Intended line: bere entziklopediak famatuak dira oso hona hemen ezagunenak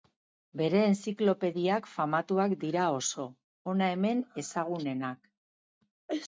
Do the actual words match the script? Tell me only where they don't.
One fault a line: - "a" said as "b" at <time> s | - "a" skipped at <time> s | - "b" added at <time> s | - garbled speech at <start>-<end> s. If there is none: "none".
none